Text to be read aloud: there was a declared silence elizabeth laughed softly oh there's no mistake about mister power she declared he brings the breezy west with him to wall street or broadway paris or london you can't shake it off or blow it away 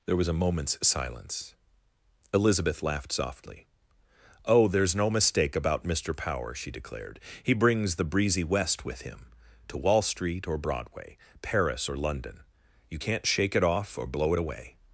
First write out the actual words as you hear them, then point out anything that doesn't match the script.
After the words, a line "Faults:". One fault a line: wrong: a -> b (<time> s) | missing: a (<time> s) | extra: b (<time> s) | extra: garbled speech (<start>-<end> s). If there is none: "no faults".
there was a moment's silence elizabeth laughed softly oh there's no mistake about mister power she declared he brings the breezy west with him to wall street or broadway paris or london you can't shake it off or blow it away
Faults:
wrong: declared -> moment's (0.3 s)